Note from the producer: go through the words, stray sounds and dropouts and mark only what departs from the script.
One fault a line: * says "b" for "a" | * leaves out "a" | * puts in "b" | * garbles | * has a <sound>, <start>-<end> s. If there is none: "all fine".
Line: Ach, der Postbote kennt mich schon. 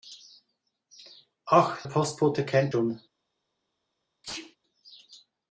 * leaves out "der"
* leaves out "mich"
* has a sneeze, 4.2-4.6 s